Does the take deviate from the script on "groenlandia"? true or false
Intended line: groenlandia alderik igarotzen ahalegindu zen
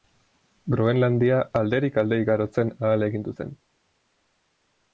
false